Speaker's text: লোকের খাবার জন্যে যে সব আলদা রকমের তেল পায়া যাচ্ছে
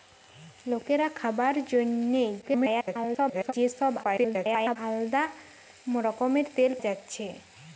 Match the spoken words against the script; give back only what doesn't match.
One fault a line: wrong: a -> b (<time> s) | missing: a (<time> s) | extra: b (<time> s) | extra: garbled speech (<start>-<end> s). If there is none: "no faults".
extra: garbled speech (2.4-3.5 s)
extra: garbled speech (4.0-4.8 s)
missing: পায়া (6.7 s)